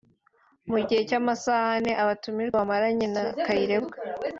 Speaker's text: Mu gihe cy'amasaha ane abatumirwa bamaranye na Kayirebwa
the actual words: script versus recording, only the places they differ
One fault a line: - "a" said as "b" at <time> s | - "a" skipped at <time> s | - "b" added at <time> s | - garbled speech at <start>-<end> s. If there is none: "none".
none